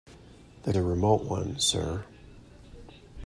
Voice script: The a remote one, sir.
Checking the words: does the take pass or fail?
pass